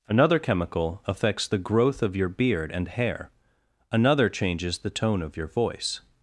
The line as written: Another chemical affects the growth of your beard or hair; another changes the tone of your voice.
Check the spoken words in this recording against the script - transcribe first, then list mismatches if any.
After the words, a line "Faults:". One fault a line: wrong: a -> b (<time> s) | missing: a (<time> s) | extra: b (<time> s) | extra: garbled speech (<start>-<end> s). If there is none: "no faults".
Another chemical affects the growth of your beard and hair; another changes the tone of your voice.
Faults:
wrong: or -> and (2.7 s)